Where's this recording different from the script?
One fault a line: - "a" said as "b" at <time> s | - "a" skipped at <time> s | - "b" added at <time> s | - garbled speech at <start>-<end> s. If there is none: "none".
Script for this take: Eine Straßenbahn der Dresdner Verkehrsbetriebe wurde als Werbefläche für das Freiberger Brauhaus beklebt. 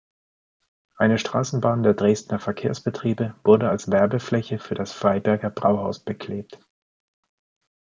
none